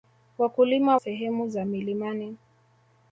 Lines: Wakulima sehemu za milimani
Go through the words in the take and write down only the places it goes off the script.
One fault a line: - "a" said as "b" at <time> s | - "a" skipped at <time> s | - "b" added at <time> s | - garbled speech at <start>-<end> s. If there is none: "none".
none